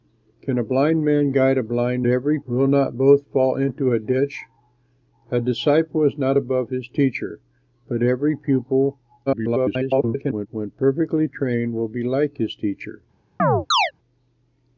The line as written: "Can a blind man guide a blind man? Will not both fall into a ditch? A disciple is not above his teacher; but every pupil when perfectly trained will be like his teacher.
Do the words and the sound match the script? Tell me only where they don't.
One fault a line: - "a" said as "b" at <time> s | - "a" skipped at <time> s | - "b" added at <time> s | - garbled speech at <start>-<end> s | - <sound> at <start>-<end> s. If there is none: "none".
- "man" said as "every" at 2.1 s
- garbled speech at 9.3-10.5 s
- chirp at 13.4-13.9 s